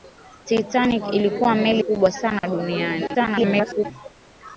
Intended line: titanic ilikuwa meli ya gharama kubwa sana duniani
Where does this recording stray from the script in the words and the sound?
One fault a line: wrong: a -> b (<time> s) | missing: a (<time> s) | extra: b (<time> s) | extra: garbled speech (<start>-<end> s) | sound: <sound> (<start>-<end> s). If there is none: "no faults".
missing: ya gharama (1.8 s)
sound: dropout (2.4-2.4 s)
extra: garbled speech (3.1-3.9 s)